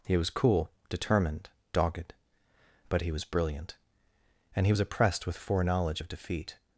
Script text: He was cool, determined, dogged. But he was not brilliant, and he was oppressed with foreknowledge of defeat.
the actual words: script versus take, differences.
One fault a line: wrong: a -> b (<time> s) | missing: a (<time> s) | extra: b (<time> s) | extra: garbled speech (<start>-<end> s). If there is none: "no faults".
missing: not (3.2 s)